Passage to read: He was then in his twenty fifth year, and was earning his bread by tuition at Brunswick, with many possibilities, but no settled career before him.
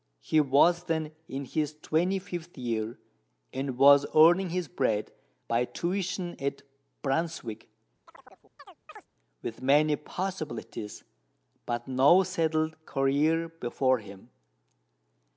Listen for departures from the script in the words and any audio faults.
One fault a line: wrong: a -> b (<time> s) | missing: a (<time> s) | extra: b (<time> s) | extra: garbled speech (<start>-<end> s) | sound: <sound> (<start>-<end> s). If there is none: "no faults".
sound: chirp (8.1-9.1 s)